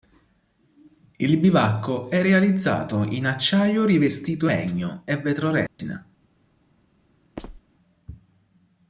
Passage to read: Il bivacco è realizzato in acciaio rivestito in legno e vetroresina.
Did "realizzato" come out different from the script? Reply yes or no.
no